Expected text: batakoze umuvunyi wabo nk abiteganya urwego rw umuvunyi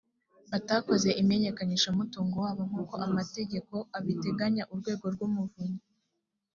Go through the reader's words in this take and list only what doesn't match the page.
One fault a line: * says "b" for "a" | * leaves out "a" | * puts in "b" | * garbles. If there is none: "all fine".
* says "imenyekanishamutungo" for "umuvunyi"
* puts in "uko amategeko"